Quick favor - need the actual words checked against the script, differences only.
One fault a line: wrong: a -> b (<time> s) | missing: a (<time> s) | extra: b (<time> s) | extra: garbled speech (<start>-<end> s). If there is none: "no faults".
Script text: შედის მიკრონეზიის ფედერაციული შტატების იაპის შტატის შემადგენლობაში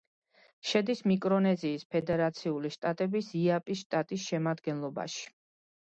no faults